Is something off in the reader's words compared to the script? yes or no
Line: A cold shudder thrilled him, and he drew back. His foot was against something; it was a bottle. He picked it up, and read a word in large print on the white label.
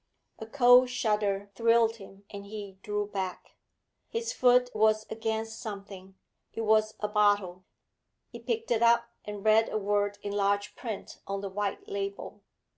no